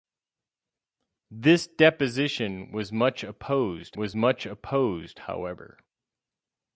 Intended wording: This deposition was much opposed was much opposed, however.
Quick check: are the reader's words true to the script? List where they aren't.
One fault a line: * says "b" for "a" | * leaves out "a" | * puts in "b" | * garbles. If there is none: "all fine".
all fine